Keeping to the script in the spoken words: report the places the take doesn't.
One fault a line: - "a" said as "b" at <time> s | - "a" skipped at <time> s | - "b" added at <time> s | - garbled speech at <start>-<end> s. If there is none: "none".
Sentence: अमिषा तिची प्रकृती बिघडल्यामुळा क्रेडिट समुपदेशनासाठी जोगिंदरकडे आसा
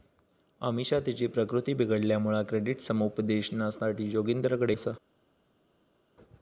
none